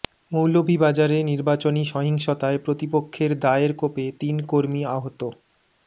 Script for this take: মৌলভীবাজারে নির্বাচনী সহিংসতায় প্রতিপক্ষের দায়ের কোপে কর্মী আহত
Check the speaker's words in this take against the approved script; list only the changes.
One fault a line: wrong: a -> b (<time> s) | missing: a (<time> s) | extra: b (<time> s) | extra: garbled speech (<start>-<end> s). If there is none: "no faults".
extra: তিন (4.2 s)